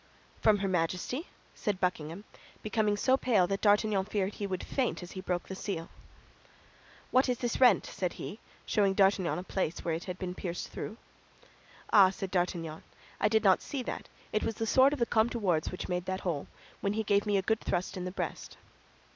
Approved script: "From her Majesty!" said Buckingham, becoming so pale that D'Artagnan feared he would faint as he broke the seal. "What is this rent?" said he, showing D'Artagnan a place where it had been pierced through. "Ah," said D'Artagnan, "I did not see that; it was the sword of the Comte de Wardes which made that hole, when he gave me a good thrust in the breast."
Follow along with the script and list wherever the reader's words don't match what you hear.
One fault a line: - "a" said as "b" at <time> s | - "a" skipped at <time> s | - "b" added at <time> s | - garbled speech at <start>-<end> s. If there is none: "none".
none